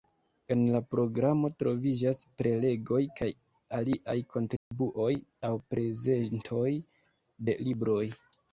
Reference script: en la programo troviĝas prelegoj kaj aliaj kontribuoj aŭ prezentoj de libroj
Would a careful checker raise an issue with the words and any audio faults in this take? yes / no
yes